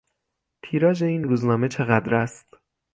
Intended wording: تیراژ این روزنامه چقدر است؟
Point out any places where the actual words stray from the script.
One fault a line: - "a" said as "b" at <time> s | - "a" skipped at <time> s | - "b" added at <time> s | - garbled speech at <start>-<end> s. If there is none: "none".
none